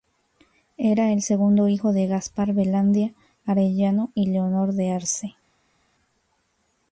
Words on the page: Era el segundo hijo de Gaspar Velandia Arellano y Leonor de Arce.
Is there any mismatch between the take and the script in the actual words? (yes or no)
no